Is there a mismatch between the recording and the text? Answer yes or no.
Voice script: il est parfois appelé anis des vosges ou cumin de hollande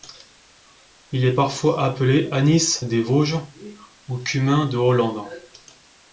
no